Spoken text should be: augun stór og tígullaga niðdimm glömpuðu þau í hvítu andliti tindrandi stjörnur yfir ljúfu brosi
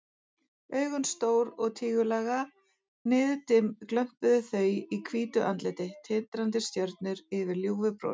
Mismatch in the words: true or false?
false